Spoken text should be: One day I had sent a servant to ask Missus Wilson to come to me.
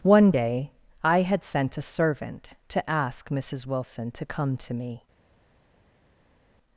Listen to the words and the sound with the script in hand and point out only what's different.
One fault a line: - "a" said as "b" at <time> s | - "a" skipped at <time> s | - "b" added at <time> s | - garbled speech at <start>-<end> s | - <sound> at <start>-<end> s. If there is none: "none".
none